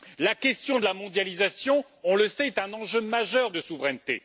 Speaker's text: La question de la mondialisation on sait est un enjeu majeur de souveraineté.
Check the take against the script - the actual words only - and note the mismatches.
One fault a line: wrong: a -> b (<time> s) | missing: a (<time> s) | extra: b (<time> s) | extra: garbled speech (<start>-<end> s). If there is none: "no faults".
extra: le (2.2 s)